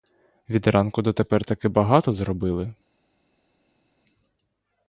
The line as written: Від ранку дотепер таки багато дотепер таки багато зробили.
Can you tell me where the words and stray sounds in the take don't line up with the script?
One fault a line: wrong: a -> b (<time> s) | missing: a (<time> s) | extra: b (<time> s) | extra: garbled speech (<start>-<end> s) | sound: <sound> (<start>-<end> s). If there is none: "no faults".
missing: дотепер таки багато (2.1 s)